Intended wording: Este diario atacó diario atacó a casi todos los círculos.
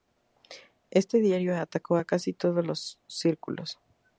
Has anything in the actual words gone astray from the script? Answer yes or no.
yes